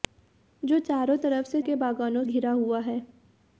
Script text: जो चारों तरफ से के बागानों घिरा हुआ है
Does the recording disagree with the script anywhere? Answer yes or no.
no